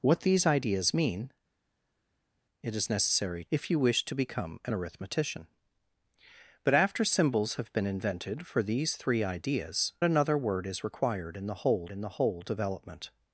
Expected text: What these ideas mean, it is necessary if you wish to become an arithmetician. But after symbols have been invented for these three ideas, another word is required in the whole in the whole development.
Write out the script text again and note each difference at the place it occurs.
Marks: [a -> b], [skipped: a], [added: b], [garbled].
What these ideas mean, it is necessary if you wish to become an arithmetician. But after symbols have been invented for these three ideas, another word is required in the whole in the whole development.